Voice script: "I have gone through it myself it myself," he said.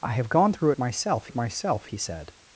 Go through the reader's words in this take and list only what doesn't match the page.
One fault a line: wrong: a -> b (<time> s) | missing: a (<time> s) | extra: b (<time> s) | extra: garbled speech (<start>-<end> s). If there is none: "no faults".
no faults